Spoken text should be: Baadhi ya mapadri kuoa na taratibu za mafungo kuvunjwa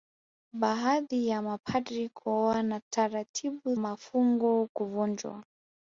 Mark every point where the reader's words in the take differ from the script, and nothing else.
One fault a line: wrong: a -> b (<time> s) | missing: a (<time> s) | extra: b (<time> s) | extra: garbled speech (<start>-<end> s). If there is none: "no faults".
missing: za (3.8 s)